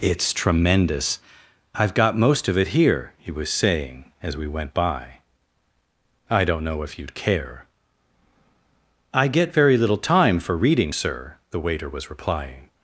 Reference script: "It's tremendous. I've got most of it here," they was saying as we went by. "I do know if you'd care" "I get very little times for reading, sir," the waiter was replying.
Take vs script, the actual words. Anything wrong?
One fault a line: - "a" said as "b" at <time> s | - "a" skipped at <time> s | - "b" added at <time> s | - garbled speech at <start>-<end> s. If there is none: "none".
- "they" said as "he" at 3.2 s
- "do" said as "don't" at 6.4 s
- "times" said as "time" at 10.0 s